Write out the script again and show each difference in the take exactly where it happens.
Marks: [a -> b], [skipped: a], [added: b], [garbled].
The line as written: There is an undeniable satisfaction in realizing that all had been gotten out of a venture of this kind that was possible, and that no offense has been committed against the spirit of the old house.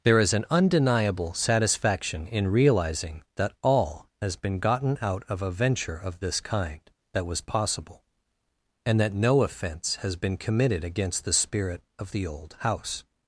There is an undeniable satisfaction in realizing that all [had -> has] been gotten out of a venture of this kind that was possible, and that no offense has been committed against the spirit of the old house.